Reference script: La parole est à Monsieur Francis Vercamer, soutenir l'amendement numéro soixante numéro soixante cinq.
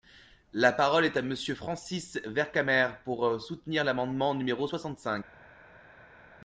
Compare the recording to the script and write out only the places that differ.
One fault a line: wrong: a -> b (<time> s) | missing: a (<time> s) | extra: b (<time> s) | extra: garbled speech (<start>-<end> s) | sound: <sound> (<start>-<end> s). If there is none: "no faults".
extra: pour (3.0 s)
missing: numéro soixante (5.0 s)